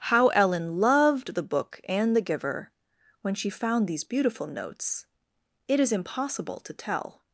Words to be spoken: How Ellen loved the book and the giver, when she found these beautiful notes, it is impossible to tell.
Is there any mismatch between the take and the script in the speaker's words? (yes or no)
no